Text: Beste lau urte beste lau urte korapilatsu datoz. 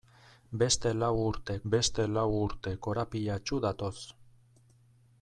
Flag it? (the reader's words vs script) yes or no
no